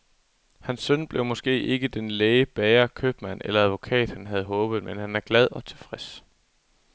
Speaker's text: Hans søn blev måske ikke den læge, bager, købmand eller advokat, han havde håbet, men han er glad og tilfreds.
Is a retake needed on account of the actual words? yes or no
no